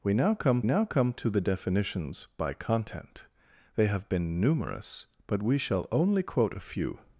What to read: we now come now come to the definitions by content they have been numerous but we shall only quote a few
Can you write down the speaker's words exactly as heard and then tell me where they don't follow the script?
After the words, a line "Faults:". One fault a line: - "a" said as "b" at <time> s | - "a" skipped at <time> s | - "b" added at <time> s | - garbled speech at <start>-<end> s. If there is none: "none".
we now come now come to the definitions by content they have been numerous but we shall only quote a few
Faults:
none